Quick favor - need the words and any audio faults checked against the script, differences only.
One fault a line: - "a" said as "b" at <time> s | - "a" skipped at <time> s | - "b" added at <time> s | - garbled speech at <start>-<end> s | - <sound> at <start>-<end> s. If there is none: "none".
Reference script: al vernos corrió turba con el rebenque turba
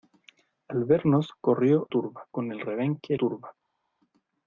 none